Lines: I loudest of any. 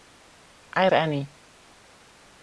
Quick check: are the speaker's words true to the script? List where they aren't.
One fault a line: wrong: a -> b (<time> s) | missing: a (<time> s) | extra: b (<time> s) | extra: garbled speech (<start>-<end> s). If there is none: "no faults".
missing: loudest of (0.9 s)